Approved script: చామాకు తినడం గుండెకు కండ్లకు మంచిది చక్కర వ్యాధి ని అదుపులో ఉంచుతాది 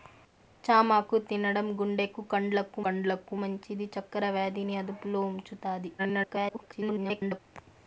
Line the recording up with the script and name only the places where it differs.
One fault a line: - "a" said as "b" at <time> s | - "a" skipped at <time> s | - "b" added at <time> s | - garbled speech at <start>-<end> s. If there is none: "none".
- "కండ్లకు" added at 2.8 s
- garbled speech at 6.0-7.4 s